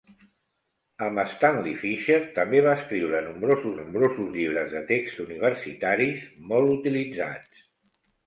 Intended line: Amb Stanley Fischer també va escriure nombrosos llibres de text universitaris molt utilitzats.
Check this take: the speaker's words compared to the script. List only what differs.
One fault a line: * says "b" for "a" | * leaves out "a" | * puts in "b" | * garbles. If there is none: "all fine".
* puts in "nombrosos"